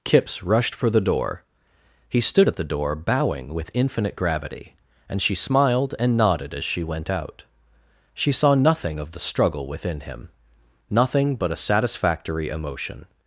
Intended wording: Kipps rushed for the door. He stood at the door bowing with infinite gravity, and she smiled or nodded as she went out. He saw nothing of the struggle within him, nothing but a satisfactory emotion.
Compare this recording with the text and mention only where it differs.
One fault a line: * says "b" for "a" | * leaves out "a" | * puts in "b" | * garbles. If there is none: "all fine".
* says "and" for "or"
* says "She" for "He"